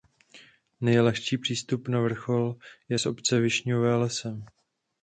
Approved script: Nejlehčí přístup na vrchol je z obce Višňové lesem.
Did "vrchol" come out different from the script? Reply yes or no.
no